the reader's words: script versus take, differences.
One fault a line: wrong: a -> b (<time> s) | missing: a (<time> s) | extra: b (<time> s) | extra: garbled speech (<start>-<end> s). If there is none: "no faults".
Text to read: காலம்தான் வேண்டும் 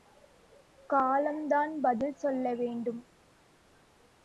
extra: பதில் சொல்ல (1.8 s)